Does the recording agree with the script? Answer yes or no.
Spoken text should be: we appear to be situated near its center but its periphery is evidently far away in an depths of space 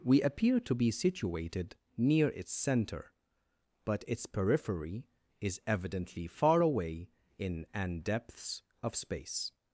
yes